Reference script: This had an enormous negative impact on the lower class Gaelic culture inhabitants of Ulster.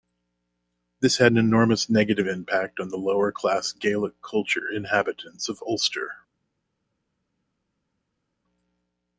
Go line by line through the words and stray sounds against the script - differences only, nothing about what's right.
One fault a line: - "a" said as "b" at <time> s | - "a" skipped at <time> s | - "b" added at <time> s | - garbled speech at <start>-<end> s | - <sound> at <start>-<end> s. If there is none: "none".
none